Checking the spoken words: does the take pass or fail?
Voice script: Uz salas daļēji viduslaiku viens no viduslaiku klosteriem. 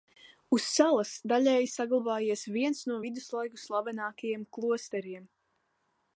fail